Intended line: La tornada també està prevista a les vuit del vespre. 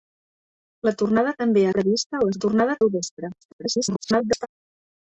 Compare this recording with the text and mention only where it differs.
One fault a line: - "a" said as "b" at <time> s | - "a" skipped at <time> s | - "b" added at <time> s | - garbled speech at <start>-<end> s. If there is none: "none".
- "està" skipped at 1.7 s
- "vuit" said as "tornada" at 2.4 s
- garbled speech at 3.4-4.5 s